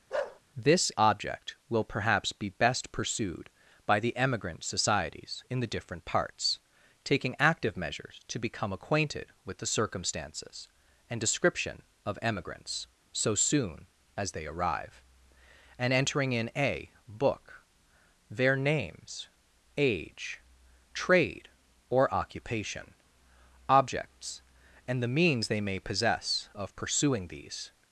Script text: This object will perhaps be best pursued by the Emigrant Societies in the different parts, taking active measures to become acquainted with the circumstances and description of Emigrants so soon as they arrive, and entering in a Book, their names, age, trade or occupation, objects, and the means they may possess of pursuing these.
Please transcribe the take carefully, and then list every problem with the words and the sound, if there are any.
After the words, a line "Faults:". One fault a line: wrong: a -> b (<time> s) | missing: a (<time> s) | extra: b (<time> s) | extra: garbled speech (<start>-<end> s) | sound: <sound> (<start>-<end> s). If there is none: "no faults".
This object will perhaps be best pursued by the Emigrant Societies in the different parts, taking active measures to become acquainted with the circumstances and description of Emigrants so soon as they arrive, and entering in a Book, their names, age, trade or occupation, objects, and the means they may possess of pursuing these.
Faults:
sound: bark (0.1-0.4 s)